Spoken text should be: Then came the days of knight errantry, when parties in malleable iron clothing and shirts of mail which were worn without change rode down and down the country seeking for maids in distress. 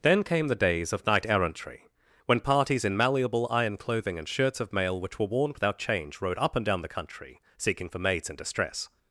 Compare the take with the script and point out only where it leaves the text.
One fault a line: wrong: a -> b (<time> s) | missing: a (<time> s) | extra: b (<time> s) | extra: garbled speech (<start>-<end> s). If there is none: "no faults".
wrong: down -> up (6.4 s)